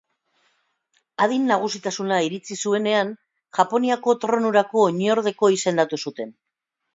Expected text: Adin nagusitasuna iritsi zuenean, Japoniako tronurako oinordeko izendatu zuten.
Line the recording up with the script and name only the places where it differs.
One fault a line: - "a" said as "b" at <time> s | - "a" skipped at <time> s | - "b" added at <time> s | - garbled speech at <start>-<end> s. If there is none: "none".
none